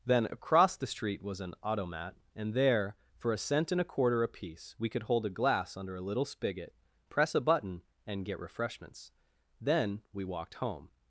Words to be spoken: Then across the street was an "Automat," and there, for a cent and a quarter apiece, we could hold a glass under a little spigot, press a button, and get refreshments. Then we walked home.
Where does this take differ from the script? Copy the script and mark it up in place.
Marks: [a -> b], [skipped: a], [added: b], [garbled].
Then across the street was an "Automat," and there, for a cent and a quarter apiece, we could hold a glass under a little spigot, press a button, and get refreshments. Then we walked home.